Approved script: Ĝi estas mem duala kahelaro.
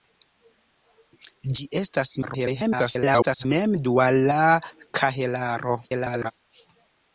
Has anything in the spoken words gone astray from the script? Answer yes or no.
yes